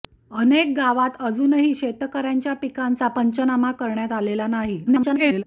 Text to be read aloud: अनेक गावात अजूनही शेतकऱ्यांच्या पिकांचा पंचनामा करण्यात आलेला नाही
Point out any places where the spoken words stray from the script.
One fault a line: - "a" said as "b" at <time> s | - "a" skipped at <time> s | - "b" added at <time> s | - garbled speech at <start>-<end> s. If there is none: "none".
- garbled speech at 4.9-5.4 s